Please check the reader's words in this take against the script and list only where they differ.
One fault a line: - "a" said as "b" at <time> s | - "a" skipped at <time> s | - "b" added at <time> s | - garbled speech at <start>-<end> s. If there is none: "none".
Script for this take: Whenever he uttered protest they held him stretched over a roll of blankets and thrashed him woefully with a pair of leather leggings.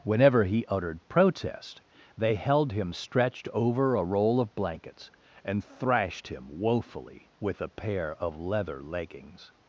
none